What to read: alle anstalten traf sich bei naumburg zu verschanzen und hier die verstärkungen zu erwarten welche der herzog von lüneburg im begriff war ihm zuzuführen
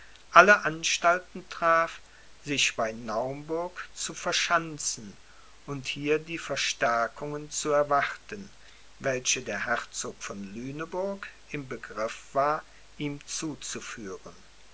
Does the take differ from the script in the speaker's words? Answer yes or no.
no